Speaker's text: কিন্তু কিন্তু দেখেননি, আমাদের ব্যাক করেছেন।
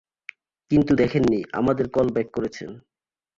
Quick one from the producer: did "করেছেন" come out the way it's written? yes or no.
yes